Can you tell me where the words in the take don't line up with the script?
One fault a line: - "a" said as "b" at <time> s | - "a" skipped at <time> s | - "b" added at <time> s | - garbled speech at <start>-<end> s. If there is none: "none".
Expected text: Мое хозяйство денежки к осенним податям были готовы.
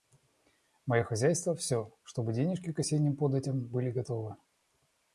- "всё чтобы" added at 1.5 s